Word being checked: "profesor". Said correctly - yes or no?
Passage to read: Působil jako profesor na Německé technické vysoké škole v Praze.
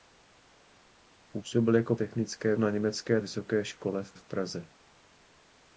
no